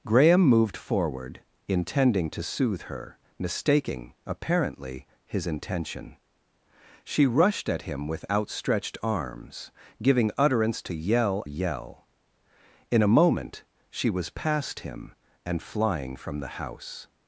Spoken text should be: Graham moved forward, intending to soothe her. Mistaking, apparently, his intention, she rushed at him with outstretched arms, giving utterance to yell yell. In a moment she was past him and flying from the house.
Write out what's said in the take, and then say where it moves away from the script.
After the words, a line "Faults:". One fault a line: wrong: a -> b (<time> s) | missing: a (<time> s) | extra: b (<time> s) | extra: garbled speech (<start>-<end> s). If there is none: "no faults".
Graham moved forward, intending to soothe her. Mistaking, apparently, his intention, she rushed at him with outstretched arms, giving utterance to yell yell. In a moment she was past him and flying from the house.
Faults:
no faults